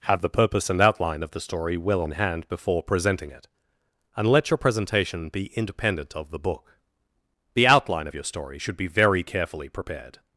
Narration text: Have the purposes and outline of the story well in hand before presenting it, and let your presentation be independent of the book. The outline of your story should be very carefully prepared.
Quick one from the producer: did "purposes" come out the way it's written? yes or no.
no